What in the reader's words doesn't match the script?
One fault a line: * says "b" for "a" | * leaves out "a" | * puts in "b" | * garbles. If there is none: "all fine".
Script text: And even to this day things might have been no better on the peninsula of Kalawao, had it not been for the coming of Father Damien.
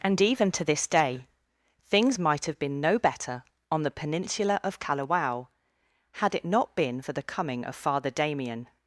all fine